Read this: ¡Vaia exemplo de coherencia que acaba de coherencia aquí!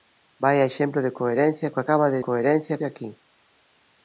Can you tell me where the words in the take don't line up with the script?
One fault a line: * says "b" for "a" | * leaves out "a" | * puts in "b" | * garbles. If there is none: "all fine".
all fine